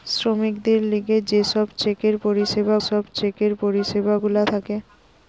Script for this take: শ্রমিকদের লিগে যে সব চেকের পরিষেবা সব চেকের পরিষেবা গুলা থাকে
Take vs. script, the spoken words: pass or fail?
pass